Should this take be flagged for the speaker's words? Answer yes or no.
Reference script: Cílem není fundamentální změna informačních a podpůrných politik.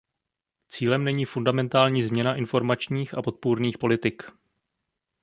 no